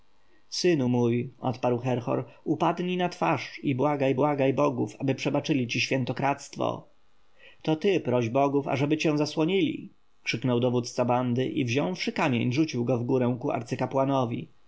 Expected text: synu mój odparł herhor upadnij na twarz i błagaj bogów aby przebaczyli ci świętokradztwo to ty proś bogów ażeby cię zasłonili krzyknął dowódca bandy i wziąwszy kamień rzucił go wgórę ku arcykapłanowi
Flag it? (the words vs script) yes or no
yes